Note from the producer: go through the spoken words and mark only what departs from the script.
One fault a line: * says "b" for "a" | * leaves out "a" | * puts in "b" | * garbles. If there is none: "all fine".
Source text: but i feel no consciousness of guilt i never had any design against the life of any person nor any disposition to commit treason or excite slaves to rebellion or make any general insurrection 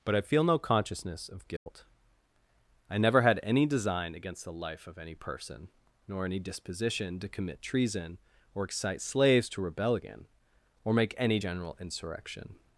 all fine